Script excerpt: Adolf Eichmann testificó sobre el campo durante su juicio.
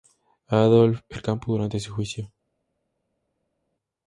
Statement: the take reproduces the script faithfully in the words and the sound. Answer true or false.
false